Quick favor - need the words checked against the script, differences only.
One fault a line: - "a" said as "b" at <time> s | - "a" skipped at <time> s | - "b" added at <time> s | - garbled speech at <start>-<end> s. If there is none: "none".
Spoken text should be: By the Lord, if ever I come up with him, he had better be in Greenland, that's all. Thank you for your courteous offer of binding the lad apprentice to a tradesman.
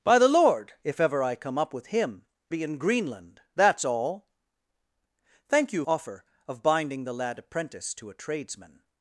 - "he had better" skipped at 2.2 s
- "for your courteous" skipped at 5.8 s